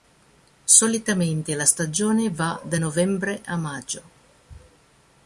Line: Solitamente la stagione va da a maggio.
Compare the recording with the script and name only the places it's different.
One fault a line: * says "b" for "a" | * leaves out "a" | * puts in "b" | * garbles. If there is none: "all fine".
* puts in "novembre"